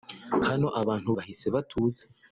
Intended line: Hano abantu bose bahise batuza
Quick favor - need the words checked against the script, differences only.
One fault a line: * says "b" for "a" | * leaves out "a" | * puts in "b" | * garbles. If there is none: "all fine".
* leaves out "bose"